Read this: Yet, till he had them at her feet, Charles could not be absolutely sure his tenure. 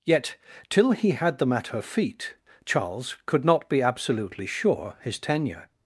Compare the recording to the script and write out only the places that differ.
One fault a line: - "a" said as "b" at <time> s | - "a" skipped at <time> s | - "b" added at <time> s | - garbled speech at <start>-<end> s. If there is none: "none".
none